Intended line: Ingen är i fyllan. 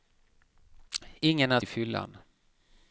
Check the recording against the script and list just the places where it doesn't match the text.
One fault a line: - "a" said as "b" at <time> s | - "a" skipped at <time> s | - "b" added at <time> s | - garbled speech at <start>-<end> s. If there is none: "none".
none